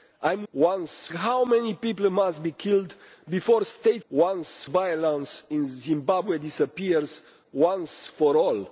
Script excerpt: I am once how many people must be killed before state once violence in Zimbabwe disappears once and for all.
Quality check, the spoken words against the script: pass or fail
pass